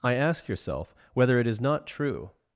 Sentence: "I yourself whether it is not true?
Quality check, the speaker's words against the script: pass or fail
fail